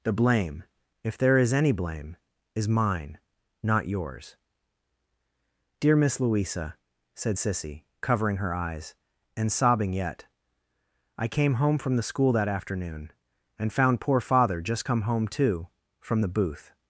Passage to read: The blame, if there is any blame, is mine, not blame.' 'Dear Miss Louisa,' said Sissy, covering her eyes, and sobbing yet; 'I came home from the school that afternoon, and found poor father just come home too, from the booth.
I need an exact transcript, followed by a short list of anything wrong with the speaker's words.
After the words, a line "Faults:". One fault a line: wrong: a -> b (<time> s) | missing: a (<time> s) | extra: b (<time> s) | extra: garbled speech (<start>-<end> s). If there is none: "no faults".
The blame, if there is any blame, is mine, not yours.' 'Dear Miss Louisa,' said Sissy, covering her eyes, and sobbing yet; 'I came home from the school that afternoon, and found poor father just come home too, from the booth.
Faults:
wrong: blame -> yours (3.9 s)